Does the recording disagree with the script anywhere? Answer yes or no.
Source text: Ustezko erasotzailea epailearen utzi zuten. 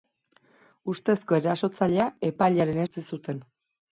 no